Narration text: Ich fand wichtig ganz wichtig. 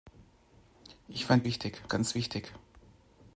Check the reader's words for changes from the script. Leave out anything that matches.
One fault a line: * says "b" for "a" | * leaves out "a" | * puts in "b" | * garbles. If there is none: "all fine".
all fine